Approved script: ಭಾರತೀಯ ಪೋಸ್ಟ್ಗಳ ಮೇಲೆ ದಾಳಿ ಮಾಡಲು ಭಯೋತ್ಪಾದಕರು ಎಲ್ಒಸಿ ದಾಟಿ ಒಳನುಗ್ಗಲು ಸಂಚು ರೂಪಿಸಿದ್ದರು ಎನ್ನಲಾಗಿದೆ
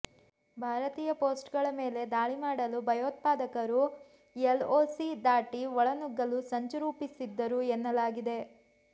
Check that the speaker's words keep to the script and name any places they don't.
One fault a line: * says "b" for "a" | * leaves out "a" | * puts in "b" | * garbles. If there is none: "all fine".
all fine